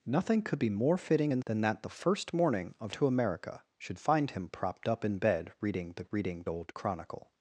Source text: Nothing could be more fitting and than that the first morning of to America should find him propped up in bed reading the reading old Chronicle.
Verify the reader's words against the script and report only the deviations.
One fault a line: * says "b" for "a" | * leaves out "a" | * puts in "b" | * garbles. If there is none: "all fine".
all fine